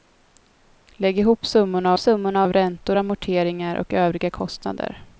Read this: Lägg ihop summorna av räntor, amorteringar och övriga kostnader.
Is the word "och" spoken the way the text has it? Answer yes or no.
yes